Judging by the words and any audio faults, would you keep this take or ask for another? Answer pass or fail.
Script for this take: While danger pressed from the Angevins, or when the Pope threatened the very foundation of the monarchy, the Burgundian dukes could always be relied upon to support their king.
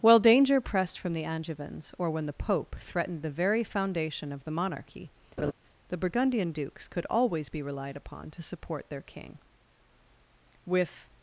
fail